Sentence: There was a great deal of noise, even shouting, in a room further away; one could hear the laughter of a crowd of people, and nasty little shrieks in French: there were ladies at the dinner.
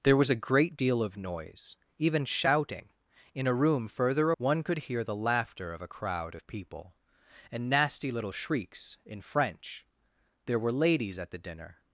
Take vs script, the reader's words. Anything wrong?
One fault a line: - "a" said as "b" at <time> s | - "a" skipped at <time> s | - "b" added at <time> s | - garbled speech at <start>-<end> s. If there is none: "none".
- "away" skipped at 4.3 s